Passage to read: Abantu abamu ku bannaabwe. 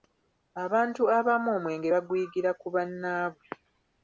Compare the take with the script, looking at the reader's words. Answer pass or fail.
fail